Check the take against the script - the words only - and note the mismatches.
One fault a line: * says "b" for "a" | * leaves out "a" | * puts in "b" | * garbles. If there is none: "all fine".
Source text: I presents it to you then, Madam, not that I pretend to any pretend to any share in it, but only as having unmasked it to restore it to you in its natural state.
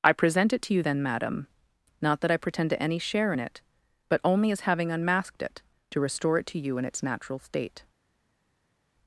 * says "present" for "presents"
* leaves out "pretend to any"